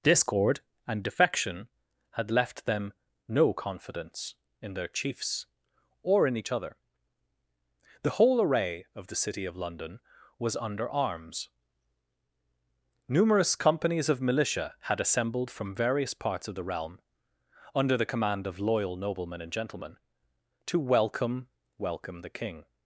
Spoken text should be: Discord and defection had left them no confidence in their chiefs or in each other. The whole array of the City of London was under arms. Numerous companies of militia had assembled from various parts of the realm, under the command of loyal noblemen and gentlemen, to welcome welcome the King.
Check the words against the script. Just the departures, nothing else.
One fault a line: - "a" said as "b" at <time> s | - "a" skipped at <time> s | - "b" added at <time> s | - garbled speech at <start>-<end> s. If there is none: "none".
none